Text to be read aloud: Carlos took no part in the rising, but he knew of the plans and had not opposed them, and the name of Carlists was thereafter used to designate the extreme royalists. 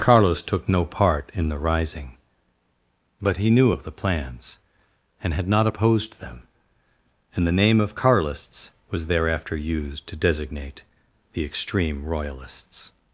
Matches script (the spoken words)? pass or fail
pass